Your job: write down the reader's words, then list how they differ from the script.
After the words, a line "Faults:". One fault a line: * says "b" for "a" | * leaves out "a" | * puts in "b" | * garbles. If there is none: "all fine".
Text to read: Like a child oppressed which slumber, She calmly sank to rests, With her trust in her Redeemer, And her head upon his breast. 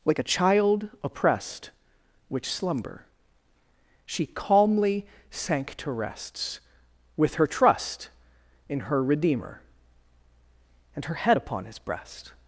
Like a child oppressed which slumber, She calmly sank to rests, With her trust in her Redeemer, And her head upon his breast.
Faults:
all fine